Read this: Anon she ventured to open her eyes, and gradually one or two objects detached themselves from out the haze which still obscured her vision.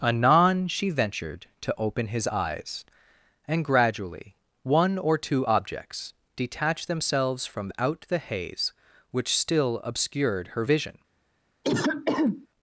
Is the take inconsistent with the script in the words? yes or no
yes